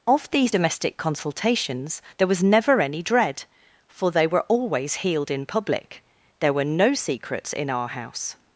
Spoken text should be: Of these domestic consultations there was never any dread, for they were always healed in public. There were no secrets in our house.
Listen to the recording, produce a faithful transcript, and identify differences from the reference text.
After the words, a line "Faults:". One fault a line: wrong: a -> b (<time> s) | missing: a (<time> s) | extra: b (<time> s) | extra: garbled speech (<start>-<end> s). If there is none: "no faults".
Of these domestic consultations there was never any dread, for they were always healed in public. There were no secrets in our house.
Faults:
no faults